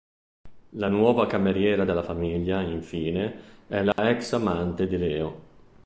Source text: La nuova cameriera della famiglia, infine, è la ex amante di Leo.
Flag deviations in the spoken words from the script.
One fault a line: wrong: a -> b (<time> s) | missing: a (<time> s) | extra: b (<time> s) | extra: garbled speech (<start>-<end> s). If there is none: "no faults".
no faults